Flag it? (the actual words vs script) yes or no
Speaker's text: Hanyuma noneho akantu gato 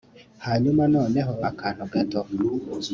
no